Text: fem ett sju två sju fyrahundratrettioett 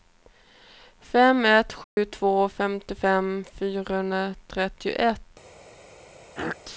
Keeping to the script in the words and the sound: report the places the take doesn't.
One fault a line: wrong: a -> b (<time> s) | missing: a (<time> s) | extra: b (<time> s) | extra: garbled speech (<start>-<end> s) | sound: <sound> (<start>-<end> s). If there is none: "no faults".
sound: dropout (1.8-2.0 s)
wrong: sju -> femtiofem (2.5 s)
sound: throat clearing (6.4-6.6 s)